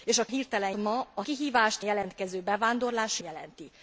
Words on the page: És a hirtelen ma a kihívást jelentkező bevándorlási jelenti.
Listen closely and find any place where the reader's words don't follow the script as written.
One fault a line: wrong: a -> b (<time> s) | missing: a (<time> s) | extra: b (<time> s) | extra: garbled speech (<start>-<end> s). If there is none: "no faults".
no faults